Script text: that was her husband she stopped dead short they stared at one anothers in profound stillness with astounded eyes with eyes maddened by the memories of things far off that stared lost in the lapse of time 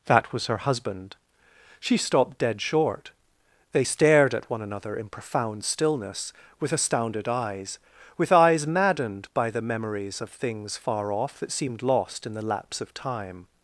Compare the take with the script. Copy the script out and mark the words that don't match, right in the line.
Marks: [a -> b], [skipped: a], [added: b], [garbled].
that was her husband she stopped dead short they stared at one [anothers -> another] in profound stillness with astounded eyes with eyes maddened by the memories of things far off that [stared -> seemed] lost in the lapse of time